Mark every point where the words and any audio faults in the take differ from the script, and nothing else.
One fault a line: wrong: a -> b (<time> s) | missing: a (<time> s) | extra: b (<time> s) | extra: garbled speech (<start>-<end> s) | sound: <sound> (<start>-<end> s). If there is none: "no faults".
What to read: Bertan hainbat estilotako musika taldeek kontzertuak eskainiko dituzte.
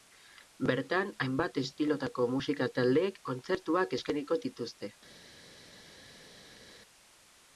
no faults